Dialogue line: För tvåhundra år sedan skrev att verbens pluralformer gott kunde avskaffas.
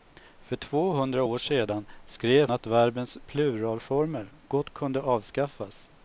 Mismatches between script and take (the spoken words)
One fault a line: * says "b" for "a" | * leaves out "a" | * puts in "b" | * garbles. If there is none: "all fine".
all fine